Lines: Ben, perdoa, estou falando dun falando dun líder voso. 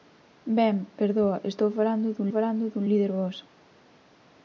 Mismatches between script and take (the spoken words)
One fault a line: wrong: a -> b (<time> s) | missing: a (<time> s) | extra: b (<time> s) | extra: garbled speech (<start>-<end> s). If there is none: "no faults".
no faults